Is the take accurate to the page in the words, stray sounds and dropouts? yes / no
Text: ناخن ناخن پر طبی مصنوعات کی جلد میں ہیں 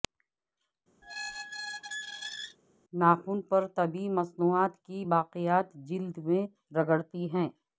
no